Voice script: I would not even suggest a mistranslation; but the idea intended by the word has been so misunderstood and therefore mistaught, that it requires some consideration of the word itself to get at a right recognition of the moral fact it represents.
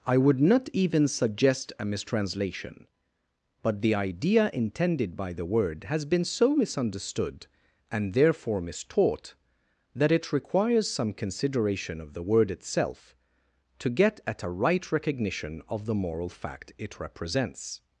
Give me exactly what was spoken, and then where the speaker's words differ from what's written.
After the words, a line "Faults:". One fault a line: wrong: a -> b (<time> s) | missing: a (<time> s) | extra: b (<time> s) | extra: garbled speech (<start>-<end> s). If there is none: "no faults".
I would not even suggest a mistranslation; but the idea intended by the word has been so misunderstood and therefore mistaught, that it requires some consideration of the word itself to get at a right recognition of the moral fact it represents.
Faults:
no faults